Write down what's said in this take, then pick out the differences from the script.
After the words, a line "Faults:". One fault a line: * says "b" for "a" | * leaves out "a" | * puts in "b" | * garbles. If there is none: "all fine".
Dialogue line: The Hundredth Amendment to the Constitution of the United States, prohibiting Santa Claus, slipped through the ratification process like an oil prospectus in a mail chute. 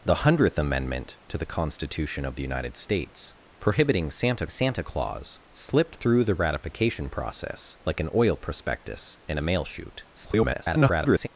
The Hundredth Amendment to the Constitution of the United States, prohibiting Santa Santa Claus, slipped through the ratification process like an oil prospectus in a mail chute. [garbled]
Faults:
* puts in "Santa"
* garbles